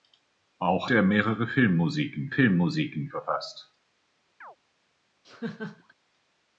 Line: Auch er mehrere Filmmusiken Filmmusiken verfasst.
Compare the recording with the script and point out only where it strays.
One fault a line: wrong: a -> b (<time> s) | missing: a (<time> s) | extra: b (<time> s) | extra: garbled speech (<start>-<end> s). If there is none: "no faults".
no faults